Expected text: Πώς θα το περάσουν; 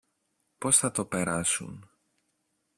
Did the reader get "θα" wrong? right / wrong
right